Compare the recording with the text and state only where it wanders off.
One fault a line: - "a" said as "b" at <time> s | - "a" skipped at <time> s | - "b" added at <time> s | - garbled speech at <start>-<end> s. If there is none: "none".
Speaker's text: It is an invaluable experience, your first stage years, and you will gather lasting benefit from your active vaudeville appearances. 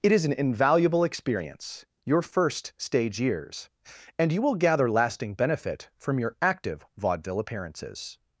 none